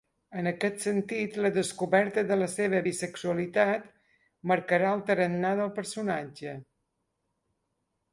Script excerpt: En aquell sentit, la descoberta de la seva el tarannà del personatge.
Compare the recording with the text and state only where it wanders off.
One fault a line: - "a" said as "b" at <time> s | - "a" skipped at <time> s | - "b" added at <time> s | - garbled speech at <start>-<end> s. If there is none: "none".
- "aquell" said as "aquest" at 0.5 s
- "bisexualitat marcarà" added at 2.9 s